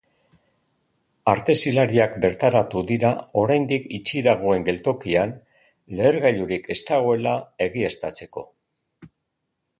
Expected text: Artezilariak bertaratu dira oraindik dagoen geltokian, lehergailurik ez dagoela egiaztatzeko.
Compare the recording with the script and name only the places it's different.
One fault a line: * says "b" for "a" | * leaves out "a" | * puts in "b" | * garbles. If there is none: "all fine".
* puts in "itxi"